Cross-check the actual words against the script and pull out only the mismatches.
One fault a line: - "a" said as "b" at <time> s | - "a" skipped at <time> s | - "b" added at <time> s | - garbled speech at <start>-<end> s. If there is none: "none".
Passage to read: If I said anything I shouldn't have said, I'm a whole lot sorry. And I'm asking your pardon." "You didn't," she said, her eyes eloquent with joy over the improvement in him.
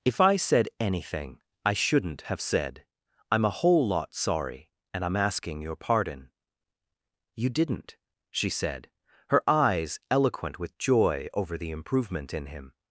none